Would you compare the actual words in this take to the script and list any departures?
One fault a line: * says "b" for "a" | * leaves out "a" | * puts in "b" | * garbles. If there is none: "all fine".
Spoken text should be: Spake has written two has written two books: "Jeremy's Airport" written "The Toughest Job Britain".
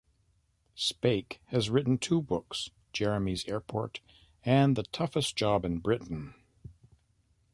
* leaves out "has written two"
* says "and" for "written"
* puts in "in"